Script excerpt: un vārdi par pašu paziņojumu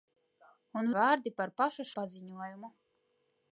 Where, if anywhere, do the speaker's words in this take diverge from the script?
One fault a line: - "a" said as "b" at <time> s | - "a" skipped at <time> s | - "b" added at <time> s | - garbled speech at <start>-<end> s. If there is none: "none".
none